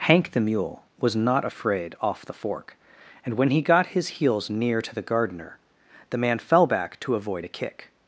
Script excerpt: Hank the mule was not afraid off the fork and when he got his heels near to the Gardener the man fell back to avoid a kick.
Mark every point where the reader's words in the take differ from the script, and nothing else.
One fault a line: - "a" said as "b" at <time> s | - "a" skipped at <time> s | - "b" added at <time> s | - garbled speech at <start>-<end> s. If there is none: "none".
none